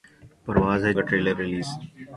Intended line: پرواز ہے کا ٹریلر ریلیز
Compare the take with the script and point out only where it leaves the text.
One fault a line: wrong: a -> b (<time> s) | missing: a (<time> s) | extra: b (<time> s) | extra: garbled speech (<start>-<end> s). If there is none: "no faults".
no faults